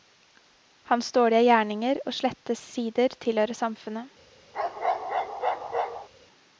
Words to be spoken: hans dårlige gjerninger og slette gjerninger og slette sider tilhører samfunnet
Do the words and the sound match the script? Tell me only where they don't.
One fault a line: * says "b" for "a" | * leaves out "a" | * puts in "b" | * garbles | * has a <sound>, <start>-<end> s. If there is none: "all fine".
* leaves out "gjerninger og slette"
* has a bark, 4.5-6.1 s